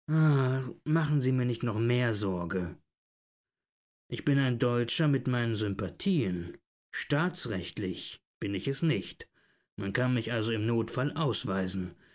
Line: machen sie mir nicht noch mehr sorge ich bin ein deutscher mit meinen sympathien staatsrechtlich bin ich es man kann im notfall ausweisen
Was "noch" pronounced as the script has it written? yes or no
yes